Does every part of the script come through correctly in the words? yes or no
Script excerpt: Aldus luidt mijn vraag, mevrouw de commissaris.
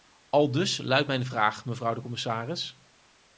yes